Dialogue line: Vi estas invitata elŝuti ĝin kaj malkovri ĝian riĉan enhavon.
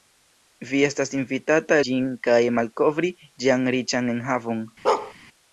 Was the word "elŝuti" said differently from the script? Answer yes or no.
yes